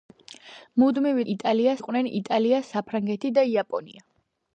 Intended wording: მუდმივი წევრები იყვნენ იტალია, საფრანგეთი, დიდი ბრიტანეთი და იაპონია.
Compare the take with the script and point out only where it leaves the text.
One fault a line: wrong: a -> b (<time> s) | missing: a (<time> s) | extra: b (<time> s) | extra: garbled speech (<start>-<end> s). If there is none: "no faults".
wrong: წევრები -> იტალია (1.3 s)
missing: დიდი ბრიტანეთი (3.3 s)